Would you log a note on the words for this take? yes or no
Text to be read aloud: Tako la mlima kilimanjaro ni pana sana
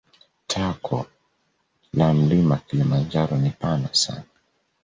no